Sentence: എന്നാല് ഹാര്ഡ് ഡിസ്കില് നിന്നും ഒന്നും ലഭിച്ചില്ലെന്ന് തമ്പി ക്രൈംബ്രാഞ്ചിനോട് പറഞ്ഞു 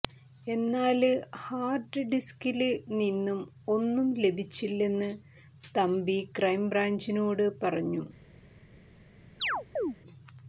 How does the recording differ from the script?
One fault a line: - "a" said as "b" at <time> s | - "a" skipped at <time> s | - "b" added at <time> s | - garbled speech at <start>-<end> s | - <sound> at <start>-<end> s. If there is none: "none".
- chirp at 9.4-10.0 s